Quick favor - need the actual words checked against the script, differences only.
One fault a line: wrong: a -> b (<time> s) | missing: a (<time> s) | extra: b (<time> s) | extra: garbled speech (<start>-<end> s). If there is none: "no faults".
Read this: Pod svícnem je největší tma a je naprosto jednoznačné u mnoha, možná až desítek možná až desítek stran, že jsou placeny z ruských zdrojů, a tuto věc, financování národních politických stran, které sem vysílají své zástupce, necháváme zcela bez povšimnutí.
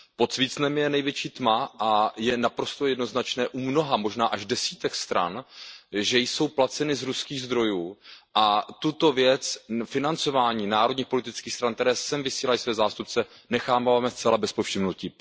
missing: možná až desítek (5.0 s)